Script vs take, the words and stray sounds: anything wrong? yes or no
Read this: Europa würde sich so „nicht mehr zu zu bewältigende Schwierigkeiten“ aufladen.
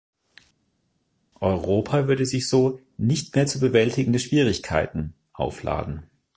yes